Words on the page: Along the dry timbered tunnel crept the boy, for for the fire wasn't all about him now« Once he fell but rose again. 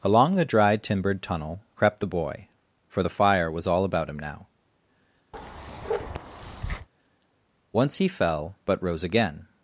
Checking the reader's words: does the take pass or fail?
fail